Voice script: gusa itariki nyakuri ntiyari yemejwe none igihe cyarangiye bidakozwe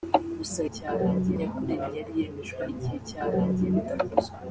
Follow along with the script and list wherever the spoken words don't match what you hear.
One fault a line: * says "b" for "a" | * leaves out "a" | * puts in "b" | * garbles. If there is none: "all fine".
* says "cyarangiye" for "itariki"
* leaves out "none"